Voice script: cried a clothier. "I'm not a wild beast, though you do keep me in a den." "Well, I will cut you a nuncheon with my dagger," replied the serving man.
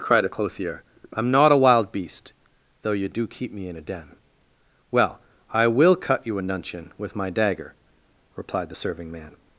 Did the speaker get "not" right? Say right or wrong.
right